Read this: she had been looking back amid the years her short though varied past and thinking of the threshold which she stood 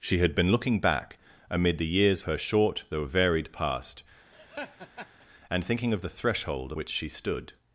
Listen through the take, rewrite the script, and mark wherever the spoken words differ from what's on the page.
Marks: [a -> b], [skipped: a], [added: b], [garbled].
she had been looking back amid the years her short though varied past and thinking of the threshold which she stood